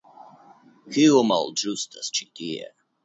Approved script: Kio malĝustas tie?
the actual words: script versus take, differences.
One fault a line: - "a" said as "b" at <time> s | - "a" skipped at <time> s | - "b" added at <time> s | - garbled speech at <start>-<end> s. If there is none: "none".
- "ĉi" added at 2.2 s